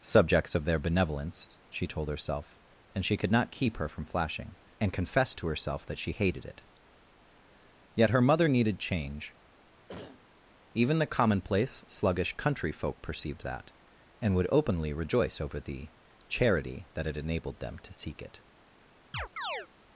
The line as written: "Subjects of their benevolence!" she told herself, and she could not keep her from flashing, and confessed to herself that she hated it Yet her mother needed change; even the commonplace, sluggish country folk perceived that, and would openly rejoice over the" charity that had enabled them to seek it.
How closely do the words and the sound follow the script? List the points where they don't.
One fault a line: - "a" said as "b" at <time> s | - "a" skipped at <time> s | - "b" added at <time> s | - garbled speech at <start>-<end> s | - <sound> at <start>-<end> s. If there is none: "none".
- cough at 9.9-10.2 s
- chirp at 19.1-19.7 s